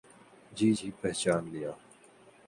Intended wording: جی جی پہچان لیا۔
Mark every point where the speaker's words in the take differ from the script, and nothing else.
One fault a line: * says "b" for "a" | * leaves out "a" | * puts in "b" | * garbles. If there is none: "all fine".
all fine